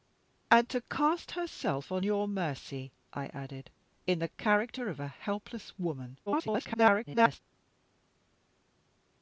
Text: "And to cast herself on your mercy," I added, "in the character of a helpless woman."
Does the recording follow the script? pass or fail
fail